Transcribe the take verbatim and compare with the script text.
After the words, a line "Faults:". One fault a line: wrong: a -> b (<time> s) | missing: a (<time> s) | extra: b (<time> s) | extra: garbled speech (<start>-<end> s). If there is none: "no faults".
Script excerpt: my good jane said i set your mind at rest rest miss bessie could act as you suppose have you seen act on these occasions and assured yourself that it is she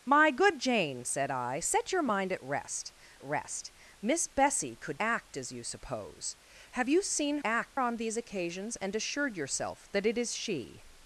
my good jane said i set your mind at rest rest miss bessie could act as you suppose have you seen act on these occasions and assured yourself that it is she
Faults:
no faults